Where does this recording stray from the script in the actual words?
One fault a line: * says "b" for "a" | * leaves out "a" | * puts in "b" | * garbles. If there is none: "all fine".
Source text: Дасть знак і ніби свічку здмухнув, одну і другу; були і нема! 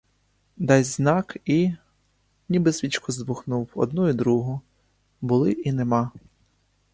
all fine